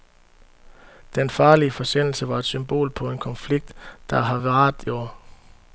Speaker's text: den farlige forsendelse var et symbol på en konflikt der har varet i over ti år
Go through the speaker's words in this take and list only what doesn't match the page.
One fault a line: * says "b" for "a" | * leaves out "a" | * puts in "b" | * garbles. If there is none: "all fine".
* leaves out "i over ti"